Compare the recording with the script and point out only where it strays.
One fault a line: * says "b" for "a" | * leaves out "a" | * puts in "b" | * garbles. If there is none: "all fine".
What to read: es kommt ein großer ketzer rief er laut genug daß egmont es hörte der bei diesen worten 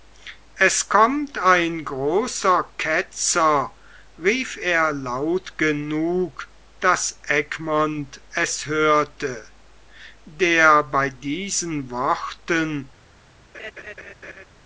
all fine